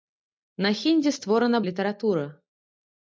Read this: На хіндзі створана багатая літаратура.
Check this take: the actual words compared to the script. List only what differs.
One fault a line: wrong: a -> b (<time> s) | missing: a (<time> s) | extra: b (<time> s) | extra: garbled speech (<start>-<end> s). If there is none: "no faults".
missing: багатая (1.6 s)